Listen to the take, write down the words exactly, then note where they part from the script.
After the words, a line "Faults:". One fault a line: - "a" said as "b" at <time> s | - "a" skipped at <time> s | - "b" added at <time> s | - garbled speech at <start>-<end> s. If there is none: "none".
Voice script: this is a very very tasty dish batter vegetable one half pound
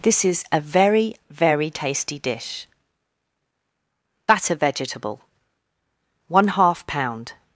this is a very very tasty dish batter vegetable one half pound
Faults:
none